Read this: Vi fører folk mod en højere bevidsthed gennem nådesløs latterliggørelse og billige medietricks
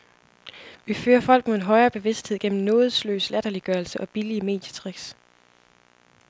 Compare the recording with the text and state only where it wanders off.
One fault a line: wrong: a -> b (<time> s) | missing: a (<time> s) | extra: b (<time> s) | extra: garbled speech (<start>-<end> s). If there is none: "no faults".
no faults